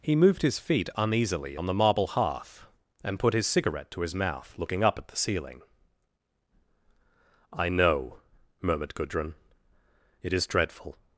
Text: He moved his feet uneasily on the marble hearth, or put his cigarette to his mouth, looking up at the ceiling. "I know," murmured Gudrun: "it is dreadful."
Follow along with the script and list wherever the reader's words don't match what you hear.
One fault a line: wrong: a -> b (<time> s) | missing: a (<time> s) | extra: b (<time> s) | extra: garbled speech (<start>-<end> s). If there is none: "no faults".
wrong: or -> and (3.0 s)